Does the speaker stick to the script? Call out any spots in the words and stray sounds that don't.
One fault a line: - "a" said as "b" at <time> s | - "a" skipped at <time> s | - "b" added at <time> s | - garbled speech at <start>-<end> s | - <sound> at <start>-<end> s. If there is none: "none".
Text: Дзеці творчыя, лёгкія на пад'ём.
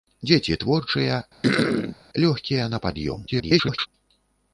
- throat clearing at 1.4-2.0 s
- garbled speech at 3.3-3.9 s